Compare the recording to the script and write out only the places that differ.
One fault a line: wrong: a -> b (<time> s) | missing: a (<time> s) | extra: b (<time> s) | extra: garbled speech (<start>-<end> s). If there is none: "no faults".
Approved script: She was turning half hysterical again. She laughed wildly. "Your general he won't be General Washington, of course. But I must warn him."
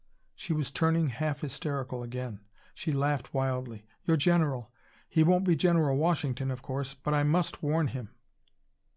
no faults